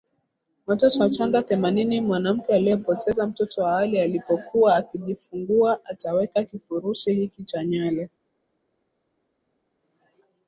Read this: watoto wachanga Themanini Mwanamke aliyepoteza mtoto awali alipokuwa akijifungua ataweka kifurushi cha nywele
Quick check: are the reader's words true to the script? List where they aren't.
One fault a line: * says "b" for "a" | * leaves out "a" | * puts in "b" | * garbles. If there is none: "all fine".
* puts in "hiki"